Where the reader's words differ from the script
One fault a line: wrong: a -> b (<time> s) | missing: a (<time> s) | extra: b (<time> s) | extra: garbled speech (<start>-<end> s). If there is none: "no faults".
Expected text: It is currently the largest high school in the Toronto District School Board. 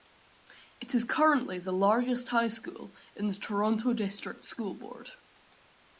no faults